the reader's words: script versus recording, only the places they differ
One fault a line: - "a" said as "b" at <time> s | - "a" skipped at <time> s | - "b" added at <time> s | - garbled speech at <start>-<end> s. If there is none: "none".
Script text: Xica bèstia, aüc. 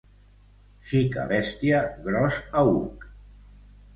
- "gros" added at 2.1 s